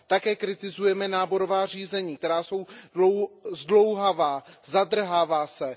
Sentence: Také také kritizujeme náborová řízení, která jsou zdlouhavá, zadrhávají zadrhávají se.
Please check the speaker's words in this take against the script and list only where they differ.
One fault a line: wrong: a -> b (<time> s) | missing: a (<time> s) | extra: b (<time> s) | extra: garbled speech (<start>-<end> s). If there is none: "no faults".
missing: také (0.3 s)
missing: zadrhávají (5.5 s)